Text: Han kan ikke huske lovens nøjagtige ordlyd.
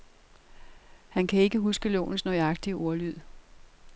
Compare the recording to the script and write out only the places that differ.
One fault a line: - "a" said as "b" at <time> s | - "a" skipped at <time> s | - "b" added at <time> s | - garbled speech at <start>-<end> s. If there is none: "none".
none